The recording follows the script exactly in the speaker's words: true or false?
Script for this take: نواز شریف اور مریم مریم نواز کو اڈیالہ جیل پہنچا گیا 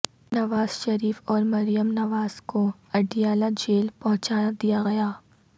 false